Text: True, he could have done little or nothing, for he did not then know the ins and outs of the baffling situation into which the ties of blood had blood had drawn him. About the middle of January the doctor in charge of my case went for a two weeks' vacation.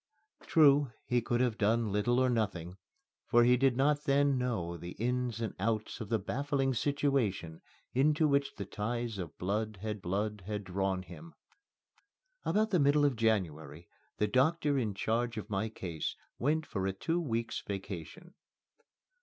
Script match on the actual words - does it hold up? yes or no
yes